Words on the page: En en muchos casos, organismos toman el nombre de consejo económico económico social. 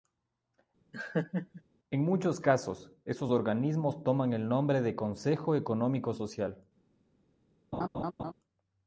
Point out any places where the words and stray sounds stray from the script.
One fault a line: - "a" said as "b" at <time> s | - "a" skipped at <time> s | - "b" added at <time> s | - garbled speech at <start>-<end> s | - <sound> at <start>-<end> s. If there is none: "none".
- laugh at 0.9-1.6 s
- "en" skipped at 2.0 s
- "esos" added at 3.0 s
- "económico" skipped at 6.1 s
- laugh at 7.7-8.3 s